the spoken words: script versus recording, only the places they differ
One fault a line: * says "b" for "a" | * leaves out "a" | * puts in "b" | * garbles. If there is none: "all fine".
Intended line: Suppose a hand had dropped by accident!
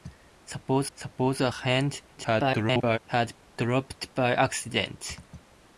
* puts in "suppose"
* garbles